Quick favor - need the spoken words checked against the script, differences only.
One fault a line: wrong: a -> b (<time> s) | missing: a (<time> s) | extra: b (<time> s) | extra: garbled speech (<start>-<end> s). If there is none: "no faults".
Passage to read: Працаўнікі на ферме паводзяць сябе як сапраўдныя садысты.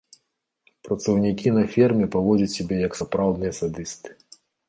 no faults